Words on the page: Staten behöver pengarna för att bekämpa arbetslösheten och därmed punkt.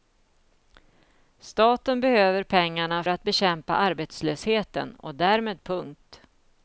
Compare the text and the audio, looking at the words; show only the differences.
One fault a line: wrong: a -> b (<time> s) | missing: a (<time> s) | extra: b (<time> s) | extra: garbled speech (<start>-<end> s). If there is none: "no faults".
missing: för (3.0 s)